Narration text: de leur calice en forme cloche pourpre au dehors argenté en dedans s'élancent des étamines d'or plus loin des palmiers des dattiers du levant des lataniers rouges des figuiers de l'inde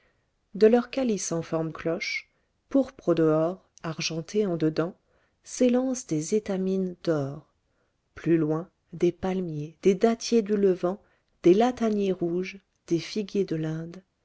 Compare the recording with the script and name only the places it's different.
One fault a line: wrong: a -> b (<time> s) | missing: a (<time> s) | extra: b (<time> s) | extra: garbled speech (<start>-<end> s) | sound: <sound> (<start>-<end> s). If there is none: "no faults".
no faults